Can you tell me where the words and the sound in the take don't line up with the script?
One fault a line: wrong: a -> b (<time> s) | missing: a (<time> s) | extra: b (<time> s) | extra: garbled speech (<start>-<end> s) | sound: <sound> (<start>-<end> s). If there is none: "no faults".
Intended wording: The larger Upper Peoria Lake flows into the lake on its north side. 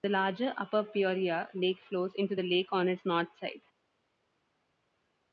no faults